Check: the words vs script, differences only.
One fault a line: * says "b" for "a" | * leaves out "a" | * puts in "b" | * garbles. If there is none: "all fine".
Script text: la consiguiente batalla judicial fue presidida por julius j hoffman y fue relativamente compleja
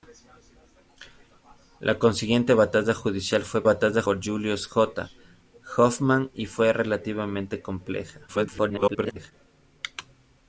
* says "batalla" for "presidida"
* garbles